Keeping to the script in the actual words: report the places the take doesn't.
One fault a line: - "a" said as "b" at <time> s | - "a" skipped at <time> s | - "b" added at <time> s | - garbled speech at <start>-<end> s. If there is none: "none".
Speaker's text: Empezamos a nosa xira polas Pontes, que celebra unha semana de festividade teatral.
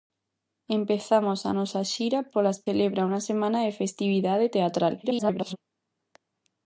- "Pontes que" skipped at 2.6 s
- garbled speech at 5.0-5.6 s